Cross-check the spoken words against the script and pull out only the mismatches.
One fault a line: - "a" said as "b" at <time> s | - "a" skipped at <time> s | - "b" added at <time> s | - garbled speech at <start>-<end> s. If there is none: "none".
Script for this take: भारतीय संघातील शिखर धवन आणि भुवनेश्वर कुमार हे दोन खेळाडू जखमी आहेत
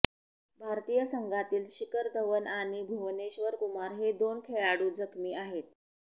none